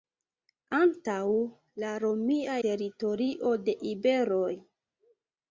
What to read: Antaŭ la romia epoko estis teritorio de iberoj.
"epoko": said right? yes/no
no